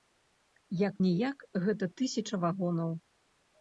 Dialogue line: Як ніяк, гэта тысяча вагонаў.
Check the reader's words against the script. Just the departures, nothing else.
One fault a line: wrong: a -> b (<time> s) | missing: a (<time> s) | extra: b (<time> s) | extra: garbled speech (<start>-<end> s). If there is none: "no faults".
no faults